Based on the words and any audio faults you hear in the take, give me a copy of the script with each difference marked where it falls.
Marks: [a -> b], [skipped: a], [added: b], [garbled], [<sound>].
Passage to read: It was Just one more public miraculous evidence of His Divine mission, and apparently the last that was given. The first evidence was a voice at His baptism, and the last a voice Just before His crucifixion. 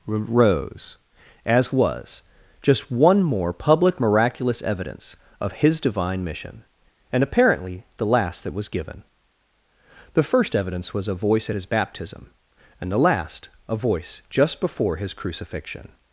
[It -> Rose as] was Just one more public miraculous evidence of His Divine mission, and apparently the last that was given. The first evidence was a voice at His baptism, and the last a voice Just before His crucifixion.